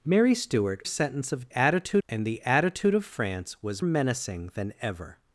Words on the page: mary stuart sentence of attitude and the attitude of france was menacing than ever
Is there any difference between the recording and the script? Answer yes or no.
no